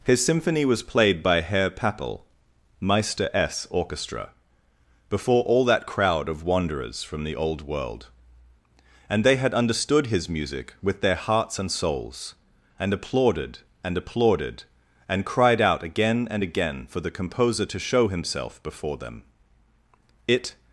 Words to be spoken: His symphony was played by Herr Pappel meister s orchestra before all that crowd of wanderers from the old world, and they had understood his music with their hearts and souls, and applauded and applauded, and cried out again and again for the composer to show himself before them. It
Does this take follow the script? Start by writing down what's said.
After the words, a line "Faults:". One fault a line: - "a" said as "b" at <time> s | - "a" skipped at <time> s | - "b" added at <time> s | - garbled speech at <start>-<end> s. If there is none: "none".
His symphony was played by Herr Pappel meister s orchestra before all that crowd of wanderers from the old world, and they had understood his music with their hearts and souls, and applauded and applauded, and cried out again and again for the composer to show himself before them. It
Faults:
none